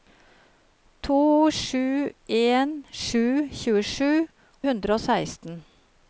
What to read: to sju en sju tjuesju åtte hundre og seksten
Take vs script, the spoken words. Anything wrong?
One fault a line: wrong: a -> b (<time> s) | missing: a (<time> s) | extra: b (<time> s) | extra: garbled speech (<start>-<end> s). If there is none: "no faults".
missing: åtte (4.1 s)